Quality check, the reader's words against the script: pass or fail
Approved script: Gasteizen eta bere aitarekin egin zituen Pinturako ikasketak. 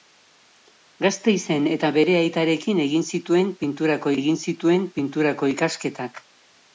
fail